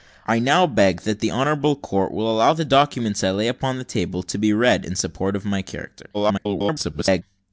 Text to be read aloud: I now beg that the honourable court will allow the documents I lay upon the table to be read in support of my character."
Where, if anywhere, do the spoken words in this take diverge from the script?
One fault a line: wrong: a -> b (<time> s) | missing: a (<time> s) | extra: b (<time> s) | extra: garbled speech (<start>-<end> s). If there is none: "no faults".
extra: garbled speech (6.1-7.2 s)